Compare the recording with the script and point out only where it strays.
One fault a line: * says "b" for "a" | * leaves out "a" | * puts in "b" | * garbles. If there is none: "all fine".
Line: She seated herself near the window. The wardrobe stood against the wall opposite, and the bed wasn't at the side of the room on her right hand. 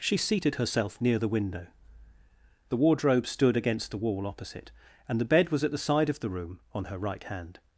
* says "was" for "wasn't"